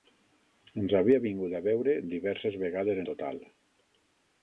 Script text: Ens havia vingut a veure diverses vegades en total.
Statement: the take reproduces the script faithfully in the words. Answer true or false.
false